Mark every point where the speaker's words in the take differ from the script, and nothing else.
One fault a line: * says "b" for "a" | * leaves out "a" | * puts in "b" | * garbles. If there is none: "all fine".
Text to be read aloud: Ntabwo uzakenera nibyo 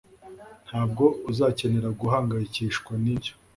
* puts in "guhangayikishwa"